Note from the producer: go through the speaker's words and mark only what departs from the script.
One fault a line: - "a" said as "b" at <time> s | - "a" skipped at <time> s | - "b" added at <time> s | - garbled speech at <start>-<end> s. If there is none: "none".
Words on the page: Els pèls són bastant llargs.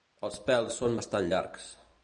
none